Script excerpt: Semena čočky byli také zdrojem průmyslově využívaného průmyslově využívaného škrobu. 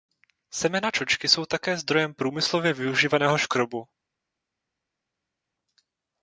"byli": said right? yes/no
no